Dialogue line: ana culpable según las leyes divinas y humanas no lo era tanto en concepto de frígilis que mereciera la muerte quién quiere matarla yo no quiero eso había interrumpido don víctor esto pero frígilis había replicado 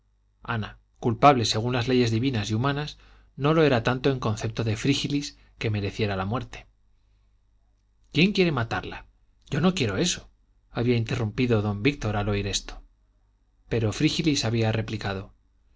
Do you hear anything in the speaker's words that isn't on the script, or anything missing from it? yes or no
yes